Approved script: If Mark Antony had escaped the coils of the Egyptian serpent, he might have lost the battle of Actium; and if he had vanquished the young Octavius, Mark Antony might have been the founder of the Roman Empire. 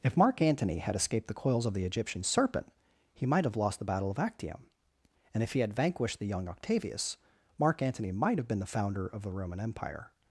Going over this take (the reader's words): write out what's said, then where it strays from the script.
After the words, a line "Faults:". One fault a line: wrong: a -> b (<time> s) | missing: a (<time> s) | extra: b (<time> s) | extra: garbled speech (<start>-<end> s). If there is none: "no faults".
If Mark Antony had escaped the coils of the Egyptian serpent, he might have lost the battle of Actium; and if he had vanquished the young Octavius, Mark Antony might have been the founder of the Roman Empire.
Faults:
no faults